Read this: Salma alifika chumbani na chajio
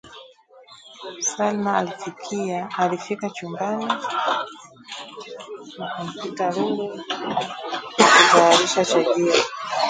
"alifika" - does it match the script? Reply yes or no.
yes